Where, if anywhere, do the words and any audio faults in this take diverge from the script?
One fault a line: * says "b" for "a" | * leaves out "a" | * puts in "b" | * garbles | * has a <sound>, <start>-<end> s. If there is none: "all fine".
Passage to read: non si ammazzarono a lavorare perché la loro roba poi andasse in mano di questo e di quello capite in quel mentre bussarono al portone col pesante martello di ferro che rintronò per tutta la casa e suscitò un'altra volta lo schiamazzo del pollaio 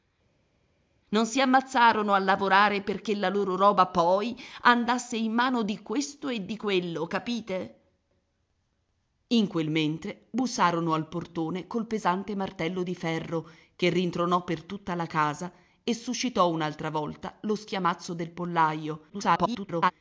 * garbles